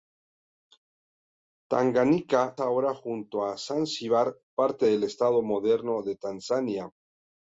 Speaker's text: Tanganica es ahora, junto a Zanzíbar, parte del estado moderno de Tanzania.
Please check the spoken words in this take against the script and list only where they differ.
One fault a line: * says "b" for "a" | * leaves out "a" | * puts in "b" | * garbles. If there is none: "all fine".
* leaves out "es"